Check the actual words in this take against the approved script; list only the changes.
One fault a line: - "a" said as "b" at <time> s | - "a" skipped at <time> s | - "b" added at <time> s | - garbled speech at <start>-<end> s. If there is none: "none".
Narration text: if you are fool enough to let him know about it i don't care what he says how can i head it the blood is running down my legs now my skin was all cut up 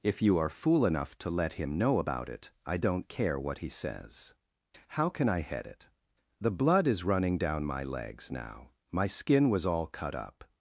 none